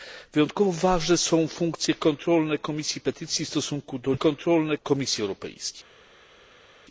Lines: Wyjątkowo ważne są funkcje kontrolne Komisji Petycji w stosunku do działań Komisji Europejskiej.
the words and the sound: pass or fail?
fail